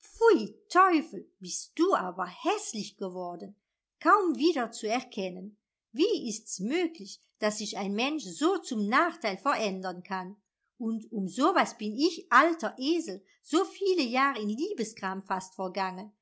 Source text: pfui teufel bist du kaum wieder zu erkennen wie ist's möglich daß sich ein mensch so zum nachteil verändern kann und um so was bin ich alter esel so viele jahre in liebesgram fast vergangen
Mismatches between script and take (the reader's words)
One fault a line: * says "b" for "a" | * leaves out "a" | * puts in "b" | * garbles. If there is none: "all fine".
* puts in "aber häßlich geworden"